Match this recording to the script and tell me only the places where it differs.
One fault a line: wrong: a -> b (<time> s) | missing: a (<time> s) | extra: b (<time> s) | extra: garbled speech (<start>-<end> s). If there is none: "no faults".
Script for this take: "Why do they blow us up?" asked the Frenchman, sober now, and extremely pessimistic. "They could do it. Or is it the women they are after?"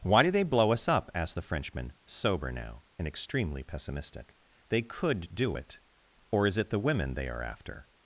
no faults